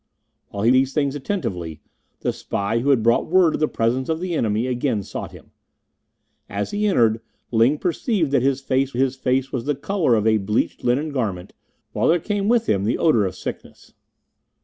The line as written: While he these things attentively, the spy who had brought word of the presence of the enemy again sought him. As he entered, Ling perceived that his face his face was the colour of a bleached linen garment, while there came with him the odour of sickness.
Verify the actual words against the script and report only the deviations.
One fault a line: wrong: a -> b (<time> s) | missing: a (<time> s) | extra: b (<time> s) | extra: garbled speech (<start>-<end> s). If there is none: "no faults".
no faults